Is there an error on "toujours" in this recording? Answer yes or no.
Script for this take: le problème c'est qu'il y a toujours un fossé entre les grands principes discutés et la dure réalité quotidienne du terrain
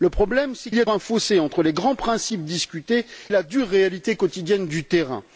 yes